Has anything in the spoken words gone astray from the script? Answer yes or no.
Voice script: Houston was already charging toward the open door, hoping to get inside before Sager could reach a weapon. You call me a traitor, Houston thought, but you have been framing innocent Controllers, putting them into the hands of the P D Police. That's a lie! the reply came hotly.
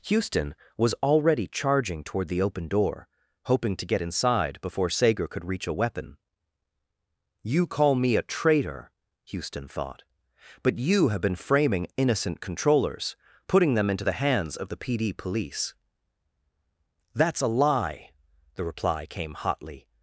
no